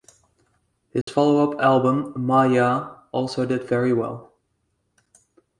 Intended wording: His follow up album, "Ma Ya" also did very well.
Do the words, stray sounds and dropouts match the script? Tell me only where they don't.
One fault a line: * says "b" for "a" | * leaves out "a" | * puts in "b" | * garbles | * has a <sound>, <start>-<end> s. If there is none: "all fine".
* has a dropout, 1.0-1.1 s